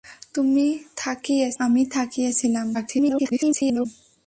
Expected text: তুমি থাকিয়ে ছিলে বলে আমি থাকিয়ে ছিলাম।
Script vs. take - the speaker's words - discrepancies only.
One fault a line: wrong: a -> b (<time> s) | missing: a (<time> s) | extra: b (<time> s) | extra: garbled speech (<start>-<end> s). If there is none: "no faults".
missing: ছিলে বলে (1.5 s)
extra: garbled speech (2.7-3.9 s)